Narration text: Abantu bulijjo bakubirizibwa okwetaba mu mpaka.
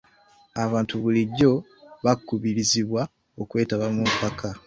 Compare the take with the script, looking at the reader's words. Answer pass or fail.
pass